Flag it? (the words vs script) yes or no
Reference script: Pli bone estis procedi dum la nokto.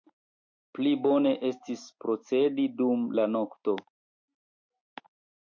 no